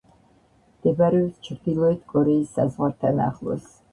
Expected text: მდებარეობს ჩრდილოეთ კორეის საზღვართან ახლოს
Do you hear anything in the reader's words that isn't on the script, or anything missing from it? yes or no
no